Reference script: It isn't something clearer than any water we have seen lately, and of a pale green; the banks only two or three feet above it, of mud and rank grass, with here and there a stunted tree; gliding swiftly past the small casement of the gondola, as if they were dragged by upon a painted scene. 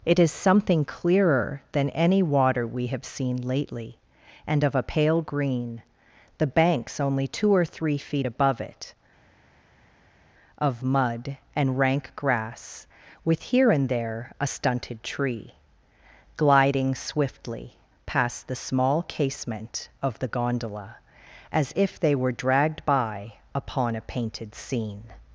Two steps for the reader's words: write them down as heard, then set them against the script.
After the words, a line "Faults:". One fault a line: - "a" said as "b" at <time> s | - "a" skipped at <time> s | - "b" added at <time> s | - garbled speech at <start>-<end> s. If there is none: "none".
It is something clearer than any water we have seen lately, and of a pale green; the banks only two or three feet above it, of mud and rank grass, with here and there a stunted tree; gliding swiftly past the small casement of the gondola, as if they were dragged by upon a painted scene.
Faults:
- "isn't" said as "is" at 0.2 s